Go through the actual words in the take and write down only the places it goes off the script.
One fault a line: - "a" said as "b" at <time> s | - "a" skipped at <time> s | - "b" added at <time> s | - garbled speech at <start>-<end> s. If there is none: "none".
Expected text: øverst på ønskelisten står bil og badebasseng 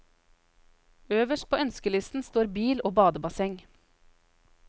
none